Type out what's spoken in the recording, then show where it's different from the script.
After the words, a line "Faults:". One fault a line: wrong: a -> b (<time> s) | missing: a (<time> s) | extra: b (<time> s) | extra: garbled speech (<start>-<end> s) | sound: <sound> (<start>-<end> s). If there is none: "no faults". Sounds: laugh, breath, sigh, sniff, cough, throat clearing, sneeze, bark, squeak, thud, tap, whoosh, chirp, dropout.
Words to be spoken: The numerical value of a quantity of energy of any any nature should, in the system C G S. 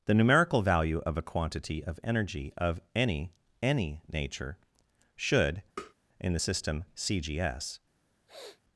The numerical value of a quantity of energy of any any nature should, in the system C G S.
Faults:
sound: tap (5.8-5.9 s)
sound: sniff (8.3-8.6 s)